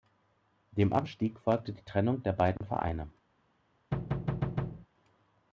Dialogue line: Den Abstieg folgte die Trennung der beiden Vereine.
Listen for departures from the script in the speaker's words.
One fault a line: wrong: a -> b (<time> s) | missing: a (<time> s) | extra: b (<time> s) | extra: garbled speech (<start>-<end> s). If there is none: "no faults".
wrong: Den -> Dem (0.7 s)